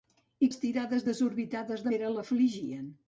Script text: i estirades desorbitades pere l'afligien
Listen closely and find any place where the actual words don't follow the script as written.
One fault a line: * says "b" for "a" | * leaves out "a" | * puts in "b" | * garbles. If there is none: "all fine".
all fine